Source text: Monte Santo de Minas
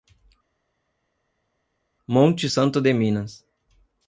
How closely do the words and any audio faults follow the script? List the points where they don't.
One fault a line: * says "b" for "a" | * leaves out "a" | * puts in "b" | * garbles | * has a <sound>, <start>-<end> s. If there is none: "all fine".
all fine